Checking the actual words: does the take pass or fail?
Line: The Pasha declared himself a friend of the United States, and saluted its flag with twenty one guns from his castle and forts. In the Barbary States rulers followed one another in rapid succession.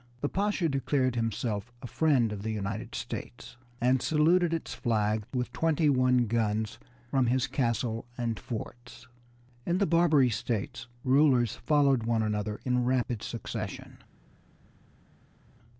pass